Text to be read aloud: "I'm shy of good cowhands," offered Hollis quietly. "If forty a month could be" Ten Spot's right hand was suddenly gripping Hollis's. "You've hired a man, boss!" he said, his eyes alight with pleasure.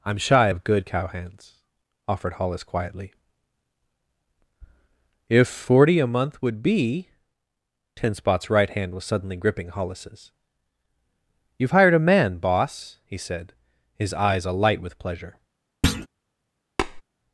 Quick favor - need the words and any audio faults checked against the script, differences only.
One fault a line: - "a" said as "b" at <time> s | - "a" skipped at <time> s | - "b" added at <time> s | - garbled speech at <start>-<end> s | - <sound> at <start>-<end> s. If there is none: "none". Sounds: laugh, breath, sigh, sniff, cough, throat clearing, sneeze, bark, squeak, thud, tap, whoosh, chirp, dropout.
- "could" said as "would" at 6.4 s
- thud at 15.8-16.1 s
- tap at 16.8-17.0 s